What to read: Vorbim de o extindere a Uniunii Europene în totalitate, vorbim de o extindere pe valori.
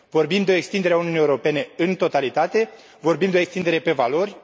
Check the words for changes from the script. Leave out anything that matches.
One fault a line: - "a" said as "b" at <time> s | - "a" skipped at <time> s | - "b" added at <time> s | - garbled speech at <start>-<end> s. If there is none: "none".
none